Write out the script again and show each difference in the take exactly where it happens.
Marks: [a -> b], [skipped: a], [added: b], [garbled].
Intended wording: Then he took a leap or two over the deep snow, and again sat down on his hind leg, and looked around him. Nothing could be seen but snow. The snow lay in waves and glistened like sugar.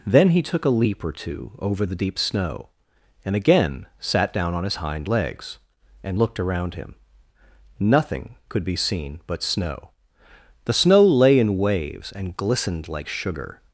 Then he took a leap or two over the deep snow, and again sat down on his hind [leg, -> legs] and looked around him. Nothing could be seen but snow. The snow lay in waves and glistened like sugar.